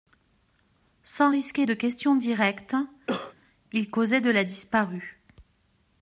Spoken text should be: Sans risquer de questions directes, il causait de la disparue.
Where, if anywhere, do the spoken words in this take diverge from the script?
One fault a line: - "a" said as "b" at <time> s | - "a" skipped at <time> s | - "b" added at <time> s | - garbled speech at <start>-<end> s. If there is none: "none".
none